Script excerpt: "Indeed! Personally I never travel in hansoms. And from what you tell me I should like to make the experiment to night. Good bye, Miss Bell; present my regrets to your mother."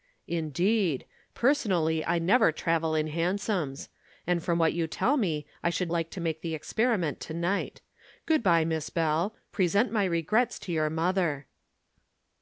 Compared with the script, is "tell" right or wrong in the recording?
right